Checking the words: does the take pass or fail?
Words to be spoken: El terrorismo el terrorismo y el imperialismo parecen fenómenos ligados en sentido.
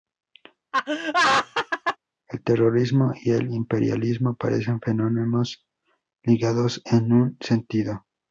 fail